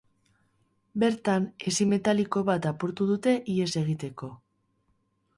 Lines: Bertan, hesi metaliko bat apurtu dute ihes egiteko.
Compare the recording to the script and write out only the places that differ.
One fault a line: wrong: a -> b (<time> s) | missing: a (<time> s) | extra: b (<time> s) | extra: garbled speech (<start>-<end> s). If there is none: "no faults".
no faults